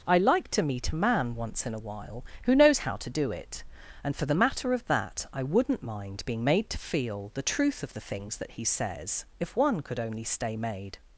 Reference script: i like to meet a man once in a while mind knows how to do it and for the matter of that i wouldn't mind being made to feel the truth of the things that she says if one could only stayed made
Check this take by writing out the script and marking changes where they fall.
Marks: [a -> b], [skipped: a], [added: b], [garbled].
i like to meet a man once in a while [mind -> who] knows how to do it and for the matter of that i wouldn't mind being made to feel the truth of the things that [she -> he] says if one could only [stayed -> stay] made